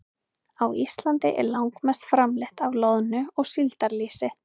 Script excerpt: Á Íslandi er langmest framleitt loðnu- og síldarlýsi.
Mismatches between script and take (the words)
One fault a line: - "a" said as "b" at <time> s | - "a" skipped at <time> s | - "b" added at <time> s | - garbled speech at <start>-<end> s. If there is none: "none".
- "af" added at 2.7 s